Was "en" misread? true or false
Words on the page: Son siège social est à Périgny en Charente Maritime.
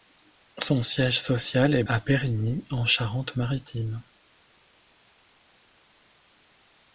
false